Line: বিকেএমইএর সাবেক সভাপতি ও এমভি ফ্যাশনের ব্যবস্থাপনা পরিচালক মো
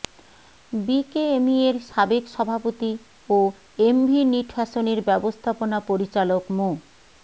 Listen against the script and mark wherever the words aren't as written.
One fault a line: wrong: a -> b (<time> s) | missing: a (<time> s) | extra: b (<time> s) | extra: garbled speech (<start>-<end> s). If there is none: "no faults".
extra: নিট (4.3 s)